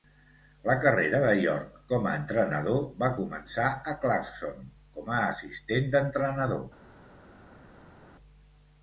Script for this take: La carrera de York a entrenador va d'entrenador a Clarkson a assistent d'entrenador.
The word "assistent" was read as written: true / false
true